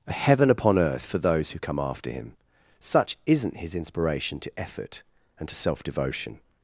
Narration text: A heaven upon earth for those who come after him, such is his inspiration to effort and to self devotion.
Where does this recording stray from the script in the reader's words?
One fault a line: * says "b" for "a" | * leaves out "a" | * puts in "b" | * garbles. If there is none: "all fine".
* says "isn't" for "is"